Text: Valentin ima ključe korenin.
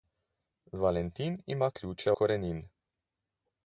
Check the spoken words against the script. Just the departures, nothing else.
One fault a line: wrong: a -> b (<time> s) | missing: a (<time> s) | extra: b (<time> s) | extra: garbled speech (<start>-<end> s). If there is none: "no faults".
no faults